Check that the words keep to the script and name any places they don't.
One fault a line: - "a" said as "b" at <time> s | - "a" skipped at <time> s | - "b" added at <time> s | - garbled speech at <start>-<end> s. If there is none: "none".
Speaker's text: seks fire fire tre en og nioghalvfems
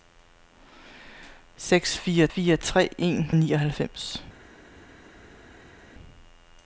none